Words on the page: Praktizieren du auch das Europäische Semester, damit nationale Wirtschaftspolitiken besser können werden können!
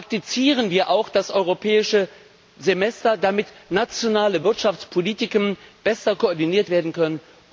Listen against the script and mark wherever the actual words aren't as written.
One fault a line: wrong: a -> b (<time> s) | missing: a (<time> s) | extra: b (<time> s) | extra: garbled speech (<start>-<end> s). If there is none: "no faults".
wrong: du -> wir (0.7 s)
wrong: können -> koordiniert (6.2 s)